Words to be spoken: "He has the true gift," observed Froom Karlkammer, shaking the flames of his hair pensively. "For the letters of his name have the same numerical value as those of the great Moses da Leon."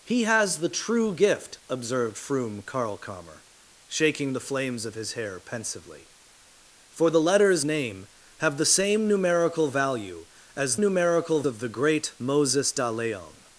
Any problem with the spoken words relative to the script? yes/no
yes